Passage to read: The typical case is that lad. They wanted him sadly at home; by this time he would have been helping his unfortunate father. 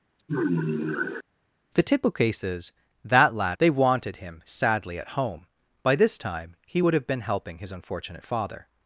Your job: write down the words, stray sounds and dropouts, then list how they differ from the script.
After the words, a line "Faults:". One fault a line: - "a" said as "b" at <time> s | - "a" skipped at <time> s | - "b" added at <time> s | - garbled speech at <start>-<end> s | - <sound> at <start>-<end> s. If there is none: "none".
The typical case is that lad. They wanted him sadly at home; by this time he would have been helping his unfortunate father.
Faults:
- sigh at 0.2-1.2 s